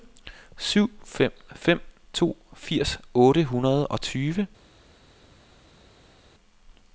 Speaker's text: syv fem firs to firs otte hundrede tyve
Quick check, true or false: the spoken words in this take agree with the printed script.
false